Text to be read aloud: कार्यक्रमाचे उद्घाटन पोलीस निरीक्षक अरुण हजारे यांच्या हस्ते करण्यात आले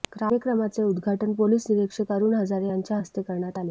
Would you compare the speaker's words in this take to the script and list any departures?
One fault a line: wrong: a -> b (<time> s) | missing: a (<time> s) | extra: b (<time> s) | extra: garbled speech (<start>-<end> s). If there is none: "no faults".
no faults